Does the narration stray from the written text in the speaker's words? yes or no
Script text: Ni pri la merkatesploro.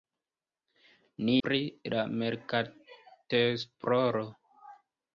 no